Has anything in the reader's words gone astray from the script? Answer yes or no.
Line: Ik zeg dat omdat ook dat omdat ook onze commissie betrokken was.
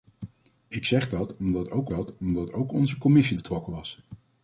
no